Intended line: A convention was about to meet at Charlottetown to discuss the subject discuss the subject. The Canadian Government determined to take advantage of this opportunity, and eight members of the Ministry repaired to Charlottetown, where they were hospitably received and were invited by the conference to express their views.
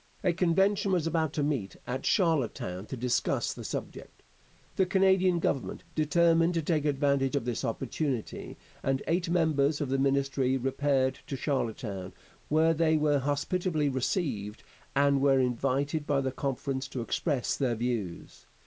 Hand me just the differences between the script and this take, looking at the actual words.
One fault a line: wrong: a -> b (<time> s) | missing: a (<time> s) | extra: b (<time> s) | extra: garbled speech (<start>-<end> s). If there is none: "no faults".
missing: discuss the subject (4.2 s)